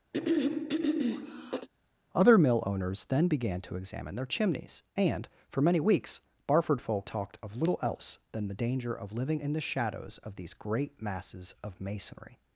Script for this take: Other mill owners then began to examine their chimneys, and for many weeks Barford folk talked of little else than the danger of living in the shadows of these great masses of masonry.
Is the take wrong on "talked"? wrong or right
right